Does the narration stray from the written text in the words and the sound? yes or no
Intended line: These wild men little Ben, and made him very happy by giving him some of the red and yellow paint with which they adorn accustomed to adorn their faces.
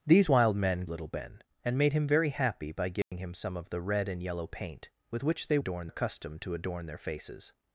yes